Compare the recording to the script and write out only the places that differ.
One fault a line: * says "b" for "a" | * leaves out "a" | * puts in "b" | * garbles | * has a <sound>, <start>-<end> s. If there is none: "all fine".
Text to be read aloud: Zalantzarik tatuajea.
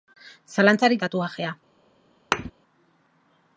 * has a thud, 2.3-2.5 s